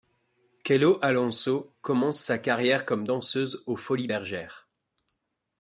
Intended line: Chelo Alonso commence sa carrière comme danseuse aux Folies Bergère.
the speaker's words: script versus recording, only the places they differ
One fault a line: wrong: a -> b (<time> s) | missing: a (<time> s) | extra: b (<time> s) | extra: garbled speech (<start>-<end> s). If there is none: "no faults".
no faults